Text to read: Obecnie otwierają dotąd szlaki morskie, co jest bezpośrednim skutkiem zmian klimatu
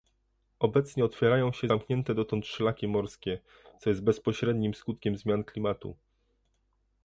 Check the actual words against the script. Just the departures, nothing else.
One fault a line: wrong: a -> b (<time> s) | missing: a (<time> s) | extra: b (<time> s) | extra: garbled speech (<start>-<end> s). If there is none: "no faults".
extra: się zamknięte (1.5 s)